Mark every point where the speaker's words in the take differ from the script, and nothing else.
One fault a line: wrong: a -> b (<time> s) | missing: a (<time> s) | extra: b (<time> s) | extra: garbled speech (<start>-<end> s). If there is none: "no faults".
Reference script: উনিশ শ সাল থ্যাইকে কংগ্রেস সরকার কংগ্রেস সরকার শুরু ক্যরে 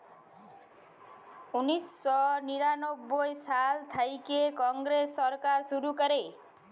extra: নিরানব্বই (2.5 s)
missing: কংগ্রেস সরকার (5.6 s)